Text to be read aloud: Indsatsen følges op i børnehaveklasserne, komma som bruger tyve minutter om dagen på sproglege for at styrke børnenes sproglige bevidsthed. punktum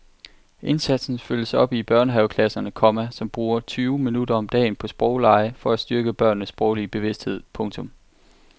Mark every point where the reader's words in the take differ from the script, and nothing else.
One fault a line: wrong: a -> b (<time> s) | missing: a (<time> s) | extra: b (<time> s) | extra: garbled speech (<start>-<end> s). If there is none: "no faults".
no faults